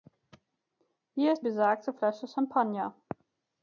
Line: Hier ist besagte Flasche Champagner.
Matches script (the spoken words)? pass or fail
pass